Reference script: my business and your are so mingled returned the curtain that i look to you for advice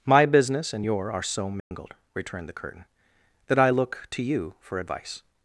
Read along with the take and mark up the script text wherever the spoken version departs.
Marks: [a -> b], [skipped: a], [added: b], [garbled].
my business and your are so mingled returned the curtain that i look to you for advice